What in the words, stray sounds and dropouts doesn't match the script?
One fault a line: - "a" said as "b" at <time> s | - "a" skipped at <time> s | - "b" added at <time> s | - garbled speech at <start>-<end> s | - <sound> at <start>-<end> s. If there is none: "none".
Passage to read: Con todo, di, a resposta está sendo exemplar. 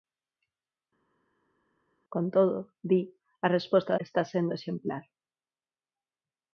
none